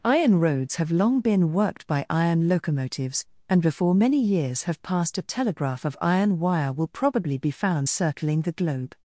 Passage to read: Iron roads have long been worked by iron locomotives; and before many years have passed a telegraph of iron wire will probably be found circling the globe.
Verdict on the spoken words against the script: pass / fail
pass